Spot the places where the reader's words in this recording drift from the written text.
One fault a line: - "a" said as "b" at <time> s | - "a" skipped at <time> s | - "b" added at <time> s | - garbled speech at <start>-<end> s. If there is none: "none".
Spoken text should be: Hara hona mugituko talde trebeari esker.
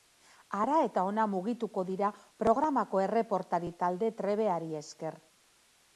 - "eta" added at 0.8 s
- "dira programako erreportari" added at 1.9 s